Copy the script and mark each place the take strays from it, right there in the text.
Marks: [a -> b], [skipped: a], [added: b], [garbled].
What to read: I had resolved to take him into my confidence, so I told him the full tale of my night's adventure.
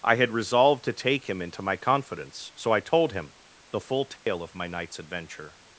I had resolved to take him into my confidence, so I told him the full tale of my night's adventure.